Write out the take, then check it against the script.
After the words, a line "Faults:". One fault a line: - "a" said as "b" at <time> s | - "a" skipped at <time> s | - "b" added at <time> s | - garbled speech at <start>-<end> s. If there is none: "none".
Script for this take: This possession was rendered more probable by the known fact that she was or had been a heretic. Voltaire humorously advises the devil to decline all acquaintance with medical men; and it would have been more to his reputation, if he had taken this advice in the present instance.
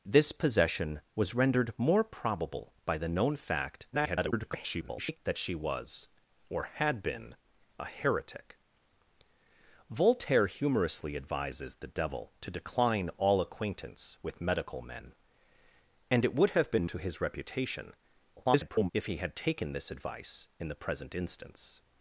This possession was rendered more probable by the known fact [garbled] that she was or had been a heretic. Voltaire humorously advises the devil to decline all acquaintance with medical men; and it would have been to his reputation, [garbled] if he had taken this advice in the present instance.
Faults:
- garbled speech at 3.9-5.2 s
- "more" skipped at 16.9 s
- garbled speech at 18.4-18.9 s